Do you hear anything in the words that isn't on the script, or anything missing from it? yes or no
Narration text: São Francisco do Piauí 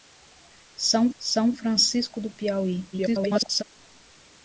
yes